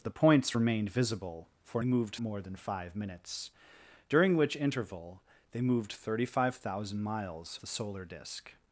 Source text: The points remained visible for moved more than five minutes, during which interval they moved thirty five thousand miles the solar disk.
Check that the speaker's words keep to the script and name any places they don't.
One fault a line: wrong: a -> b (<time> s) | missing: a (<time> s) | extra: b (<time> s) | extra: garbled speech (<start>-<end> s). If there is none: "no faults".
no faults